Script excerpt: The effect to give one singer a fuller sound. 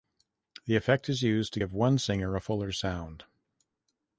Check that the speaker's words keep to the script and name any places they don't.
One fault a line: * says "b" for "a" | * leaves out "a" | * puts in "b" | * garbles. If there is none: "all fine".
* puts in "is used"